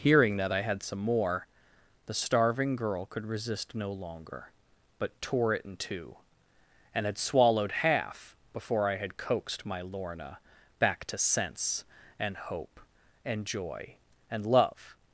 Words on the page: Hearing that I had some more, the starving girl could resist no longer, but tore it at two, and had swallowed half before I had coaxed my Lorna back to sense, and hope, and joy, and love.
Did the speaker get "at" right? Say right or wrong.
wrong